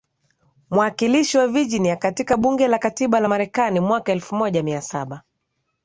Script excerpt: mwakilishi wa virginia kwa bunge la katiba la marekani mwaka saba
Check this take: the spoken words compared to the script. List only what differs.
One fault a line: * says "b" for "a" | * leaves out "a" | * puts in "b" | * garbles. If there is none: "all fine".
* says "katika" for "kwa"
* puts in "elfu moja mia"